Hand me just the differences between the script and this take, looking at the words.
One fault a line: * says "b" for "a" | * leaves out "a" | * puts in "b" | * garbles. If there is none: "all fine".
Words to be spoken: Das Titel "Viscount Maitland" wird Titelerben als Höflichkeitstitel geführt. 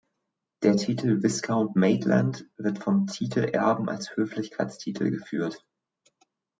* says "Der" for "Das"
* puts in "vom"